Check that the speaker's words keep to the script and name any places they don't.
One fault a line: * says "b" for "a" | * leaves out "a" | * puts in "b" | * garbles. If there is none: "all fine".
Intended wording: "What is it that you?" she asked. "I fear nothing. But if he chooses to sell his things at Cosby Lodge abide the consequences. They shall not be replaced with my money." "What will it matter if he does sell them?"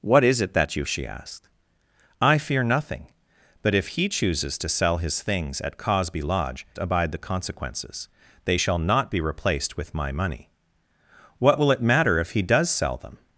all fine